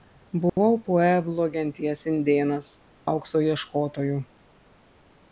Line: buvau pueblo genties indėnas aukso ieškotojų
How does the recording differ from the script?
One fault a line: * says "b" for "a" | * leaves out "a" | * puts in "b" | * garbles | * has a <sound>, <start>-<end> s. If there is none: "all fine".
* has a dropout, 0.5-0.6 s